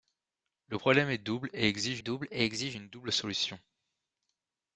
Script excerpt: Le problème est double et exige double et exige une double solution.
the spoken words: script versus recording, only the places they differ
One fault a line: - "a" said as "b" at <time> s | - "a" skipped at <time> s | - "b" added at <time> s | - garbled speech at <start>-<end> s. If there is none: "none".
none